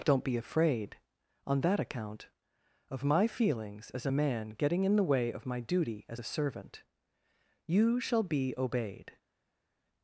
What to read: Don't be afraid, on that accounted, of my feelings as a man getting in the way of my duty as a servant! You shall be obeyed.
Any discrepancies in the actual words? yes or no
yes